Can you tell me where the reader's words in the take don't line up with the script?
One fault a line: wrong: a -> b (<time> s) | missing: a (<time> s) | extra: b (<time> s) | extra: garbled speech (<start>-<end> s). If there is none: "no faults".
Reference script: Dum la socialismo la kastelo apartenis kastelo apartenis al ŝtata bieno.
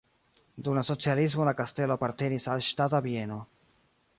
missing: kastelo apartenis (2.5 s)